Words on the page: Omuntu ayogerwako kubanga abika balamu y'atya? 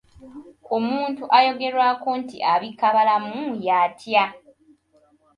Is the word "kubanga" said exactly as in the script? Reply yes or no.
no